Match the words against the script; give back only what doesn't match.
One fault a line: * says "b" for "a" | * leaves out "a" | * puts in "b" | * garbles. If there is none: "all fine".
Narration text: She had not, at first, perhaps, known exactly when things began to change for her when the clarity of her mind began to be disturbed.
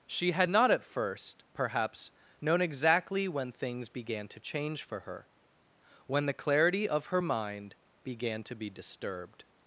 all fine